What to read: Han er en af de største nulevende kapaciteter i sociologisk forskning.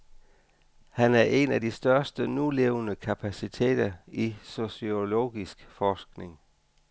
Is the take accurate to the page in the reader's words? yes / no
yes